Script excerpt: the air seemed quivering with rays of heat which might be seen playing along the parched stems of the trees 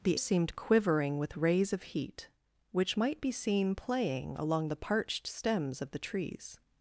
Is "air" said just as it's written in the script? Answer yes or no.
no